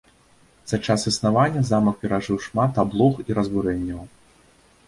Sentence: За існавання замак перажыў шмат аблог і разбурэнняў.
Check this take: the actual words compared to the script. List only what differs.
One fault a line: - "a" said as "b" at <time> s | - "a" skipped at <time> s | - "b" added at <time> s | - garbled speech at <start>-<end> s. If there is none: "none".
- "час" added at 0.8 s